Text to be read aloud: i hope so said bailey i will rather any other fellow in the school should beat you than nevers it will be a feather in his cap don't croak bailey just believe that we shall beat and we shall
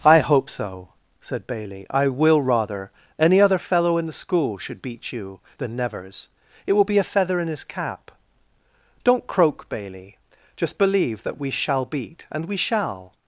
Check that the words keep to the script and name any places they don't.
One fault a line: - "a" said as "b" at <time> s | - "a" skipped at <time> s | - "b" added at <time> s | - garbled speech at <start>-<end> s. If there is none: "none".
none